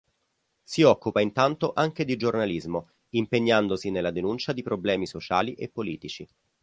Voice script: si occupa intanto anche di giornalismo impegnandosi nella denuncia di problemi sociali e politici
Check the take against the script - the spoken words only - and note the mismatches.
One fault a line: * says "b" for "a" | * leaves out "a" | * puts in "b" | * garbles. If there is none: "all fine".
all fine